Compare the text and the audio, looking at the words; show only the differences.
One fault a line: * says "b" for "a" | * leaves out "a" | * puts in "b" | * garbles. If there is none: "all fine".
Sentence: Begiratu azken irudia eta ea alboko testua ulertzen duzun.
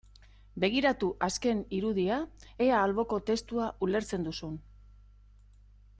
* leaves out "eta"